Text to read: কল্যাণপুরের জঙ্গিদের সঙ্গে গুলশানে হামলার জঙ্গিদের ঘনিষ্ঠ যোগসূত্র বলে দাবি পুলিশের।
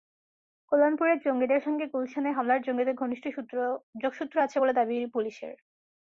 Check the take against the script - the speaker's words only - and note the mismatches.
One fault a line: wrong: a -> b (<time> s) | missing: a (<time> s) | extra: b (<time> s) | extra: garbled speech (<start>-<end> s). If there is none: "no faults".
extra: আছে (4.4 s)